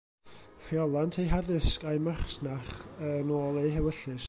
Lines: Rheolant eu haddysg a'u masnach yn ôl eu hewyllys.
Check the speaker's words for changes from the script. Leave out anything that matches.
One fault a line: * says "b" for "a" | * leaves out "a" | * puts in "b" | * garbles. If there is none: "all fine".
all fine